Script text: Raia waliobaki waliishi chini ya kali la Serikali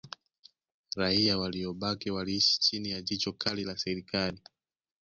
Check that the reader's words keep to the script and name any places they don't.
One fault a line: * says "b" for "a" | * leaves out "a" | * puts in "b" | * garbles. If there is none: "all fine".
* puts in "jicho"